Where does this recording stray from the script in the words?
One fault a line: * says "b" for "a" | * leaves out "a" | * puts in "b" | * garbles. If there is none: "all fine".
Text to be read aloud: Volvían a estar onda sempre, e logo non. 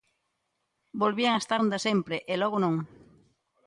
all fine